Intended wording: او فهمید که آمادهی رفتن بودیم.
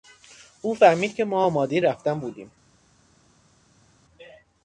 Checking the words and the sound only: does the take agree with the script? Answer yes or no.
no